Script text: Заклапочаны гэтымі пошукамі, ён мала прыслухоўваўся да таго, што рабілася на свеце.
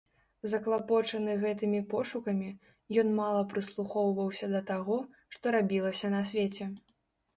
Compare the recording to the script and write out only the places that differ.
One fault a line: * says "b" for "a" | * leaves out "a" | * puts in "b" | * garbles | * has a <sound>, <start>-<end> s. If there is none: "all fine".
all fine